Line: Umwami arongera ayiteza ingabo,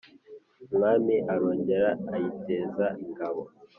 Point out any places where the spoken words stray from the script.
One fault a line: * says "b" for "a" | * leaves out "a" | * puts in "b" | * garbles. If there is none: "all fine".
all fine